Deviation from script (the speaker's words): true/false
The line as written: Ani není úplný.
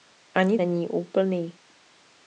false